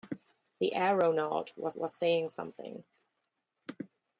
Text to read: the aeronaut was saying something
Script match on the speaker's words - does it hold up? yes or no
no